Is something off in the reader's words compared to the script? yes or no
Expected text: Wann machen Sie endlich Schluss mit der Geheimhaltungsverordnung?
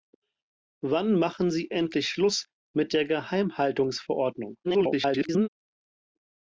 yes